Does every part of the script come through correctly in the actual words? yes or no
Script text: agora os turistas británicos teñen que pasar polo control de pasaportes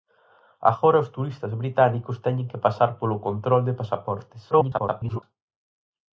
no